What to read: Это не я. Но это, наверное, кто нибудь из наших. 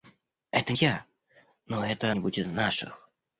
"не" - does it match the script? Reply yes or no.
no